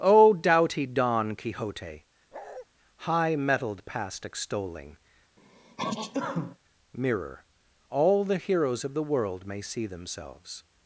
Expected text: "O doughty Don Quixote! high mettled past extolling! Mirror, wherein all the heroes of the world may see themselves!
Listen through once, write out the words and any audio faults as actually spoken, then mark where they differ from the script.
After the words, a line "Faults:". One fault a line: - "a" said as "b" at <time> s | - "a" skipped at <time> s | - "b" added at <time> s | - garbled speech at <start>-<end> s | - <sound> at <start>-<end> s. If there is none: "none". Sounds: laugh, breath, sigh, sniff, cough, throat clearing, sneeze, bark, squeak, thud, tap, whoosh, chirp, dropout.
"O doughty Don Quixote! high mettled past extolling! Mirror, all the heroes of the world may see themselves!
Faults:
- bark at 2.3-2.7 s
- sneeze at 5.4-6.6 s
- "wherein" skipped at 7.4 s